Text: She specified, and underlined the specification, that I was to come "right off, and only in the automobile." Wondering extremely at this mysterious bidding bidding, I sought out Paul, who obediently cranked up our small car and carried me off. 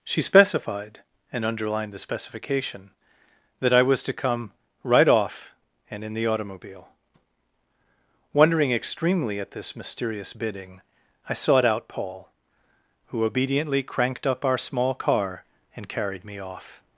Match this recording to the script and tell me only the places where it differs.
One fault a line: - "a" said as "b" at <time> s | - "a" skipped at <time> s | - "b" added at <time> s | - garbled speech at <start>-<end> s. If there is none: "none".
- "only" skipped at 6.0 s
- "bidding" skipped at 10.8 s